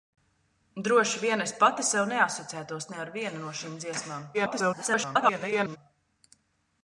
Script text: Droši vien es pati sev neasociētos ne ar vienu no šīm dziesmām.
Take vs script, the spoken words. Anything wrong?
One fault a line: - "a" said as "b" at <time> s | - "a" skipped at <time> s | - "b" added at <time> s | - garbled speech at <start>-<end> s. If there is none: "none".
- garbled speech at 4.3-5.8 s